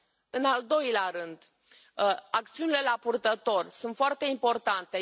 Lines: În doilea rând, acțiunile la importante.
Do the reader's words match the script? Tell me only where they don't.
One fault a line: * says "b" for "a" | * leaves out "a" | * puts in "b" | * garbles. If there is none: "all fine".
* puts in "al"
* puts in "purtător sunt foarte"